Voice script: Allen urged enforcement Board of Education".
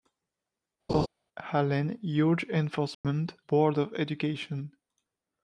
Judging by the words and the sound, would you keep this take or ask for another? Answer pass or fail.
fail